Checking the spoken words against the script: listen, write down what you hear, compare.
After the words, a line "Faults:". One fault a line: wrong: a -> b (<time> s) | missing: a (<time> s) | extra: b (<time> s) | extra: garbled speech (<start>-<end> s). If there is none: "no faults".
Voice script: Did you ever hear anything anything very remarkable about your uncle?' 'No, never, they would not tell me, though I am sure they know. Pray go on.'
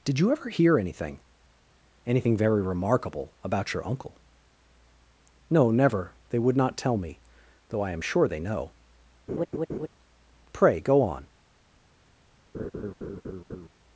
Did you ever hear anything anything very remarkable about your uncle?' 'No, never, they would not tell me, though I am sure they know. Pray go on.'
Faults:
no faults